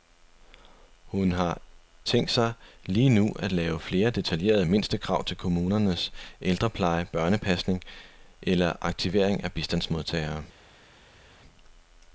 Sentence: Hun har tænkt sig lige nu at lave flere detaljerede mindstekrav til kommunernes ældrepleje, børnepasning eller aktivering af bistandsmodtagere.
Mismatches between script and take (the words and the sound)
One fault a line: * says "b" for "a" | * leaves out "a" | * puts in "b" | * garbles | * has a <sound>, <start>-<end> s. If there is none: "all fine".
all fine